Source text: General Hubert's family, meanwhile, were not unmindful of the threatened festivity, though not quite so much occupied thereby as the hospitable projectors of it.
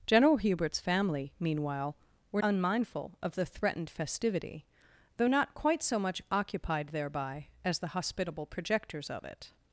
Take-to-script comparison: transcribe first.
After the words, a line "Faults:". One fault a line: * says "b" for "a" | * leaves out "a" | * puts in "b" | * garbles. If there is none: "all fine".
General Hubert's family, meanwhile, were unmindful of the threatened festivity, though not quite so much occupied thereby as the hospitable projectors of it.
Faults:
* leaves out "not"